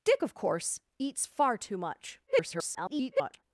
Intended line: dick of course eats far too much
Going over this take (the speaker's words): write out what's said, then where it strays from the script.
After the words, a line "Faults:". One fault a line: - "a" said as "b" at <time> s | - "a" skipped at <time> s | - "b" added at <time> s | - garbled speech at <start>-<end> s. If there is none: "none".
dick of course eats far too much [garbled]
Faults:
- garbled speech at 2.3-3.4 s